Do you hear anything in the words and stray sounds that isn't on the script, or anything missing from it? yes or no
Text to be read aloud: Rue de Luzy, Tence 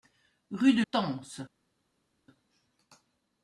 yes